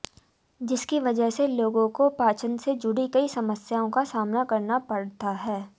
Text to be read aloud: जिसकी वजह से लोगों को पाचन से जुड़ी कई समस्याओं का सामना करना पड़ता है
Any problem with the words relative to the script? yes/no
no